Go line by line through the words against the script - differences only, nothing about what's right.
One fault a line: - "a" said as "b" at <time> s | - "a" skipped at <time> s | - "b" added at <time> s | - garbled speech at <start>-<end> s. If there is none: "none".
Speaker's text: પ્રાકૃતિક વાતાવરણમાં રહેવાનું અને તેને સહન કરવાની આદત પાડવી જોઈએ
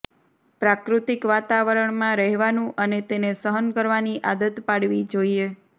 none